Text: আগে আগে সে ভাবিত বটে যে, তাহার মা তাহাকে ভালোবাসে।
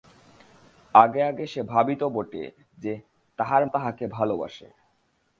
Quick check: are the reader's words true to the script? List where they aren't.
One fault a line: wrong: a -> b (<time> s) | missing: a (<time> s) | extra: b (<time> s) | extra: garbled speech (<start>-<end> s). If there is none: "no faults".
missing: মা (3.7 s)